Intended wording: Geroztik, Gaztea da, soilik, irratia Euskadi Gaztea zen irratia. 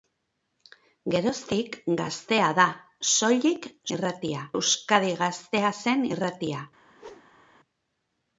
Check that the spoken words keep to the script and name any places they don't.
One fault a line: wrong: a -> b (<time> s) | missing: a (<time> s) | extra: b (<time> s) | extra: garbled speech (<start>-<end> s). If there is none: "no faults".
no faults